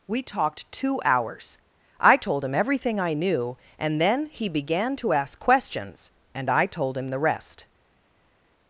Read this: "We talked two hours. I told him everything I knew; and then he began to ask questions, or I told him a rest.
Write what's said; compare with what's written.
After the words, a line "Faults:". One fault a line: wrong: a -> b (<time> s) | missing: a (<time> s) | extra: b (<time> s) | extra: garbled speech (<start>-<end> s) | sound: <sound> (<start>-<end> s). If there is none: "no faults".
"We talked two hours. I told him everything I knew; and then he began to ask questions, and I told him the rest.
Faults:
wrong: or -> and (6.3 s)
wrong: a -> the (7.1 s)